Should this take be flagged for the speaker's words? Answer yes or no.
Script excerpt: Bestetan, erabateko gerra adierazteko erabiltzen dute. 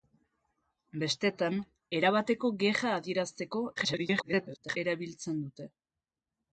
yes